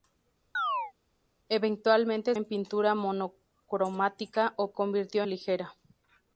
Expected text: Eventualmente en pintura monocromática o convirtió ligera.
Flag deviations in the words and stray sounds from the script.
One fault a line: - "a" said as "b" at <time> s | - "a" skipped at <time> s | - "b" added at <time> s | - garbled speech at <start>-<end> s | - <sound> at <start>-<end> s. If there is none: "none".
- chirp at 0.5-0.9 s